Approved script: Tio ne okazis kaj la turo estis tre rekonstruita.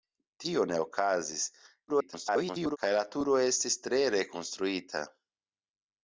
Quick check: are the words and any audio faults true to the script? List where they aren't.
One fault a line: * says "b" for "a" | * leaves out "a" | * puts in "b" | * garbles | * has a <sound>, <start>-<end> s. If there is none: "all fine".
* garbles